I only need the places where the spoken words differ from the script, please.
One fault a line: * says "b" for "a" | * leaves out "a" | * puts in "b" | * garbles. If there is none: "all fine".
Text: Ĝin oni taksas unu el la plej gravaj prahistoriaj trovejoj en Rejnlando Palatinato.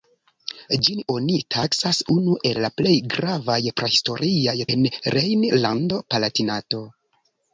* leaves out "trovejoj"